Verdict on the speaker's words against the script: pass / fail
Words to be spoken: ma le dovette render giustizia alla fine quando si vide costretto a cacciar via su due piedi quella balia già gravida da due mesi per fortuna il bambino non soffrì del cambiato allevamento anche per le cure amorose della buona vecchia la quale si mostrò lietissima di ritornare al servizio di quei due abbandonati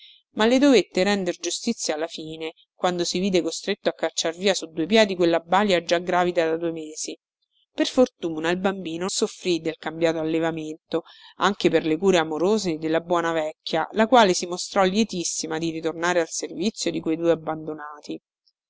fail